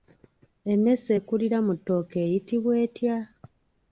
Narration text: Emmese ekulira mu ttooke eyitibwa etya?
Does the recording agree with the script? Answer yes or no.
yes